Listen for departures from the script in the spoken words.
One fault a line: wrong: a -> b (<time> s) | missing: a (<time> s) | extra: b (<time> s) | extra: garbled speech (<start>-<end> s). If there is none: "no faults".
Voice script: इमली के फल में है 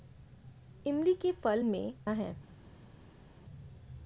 no faults